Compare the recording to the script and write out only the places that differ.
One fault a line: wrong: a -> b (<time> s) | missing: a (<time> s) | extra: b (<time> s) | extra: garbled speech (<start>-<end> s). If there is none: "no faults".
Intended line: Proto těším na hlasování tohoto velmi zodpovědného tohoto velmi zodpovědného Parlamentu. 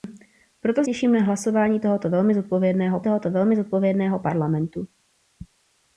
no faults